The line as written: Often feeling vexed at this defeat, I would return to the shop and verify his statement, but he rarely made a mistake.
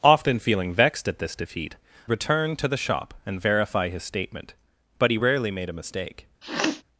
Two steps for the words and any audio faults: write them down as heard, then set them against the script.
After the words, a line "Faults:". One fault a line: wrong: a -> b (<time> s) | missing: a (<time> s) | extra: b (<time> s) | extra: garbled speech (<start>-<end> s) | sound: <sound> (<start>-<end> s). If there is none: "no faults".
Often feeling vexed at this defeat, return to the shop and verify his statement, but he rarely made a mistake.
Faults:
missing: I would (1.8 s)
sound: sniff (6.4-6.8 s)